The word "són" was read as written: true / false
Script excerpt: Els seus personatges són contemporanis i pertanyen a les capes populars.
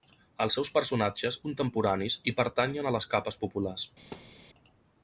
false